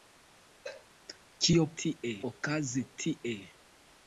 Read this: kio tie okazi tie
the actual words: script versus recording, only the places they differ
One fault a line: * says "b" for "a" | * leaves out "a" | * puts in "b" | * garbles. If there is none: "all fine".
all fine